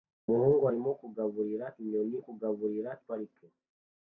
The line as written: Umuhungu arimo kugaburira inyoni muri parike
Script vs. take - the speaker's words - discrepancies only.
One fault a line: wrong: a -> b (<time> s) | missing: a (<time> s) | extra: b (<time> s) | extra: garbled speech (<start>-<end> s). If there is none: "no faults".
wrong: muri -> kugaburira (2.2 s)